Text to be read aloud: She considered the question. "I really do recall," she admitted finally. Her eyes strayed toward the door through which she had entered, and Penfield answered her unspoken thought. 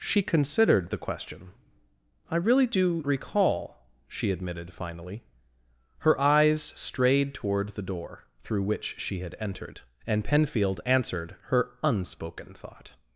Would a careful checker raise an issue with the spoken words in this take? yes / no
no